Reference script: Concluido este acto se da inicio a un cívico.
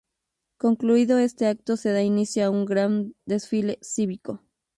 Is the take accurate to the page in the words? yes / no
no